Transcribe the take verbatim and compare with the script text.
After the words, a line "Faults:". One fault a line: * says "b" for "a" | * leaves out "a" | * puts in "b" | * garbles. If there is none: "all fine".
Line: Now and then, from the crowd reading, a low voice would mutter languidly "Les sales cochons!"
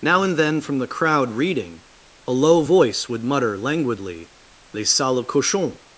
Now and then, from the crowd reading, a low voice would mutter languidly "Les sales cochons!"
Faults:
all fine